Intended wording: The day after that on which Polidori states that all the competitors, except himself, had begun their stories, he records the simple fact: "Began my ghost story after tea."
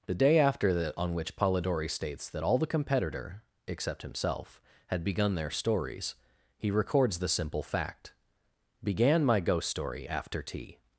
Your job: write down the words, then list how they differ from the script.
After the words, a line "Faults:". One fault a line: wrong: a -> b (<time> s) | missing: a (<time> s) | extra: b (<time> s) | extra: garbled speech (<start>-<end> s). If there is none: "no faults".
The day after that on which Polidori states that all the competitor, except himself, had begun their stories, he records the simple fact: "Began my ghost story after tea."
Faults:
wrong: competitors -> competitor (2.7 s)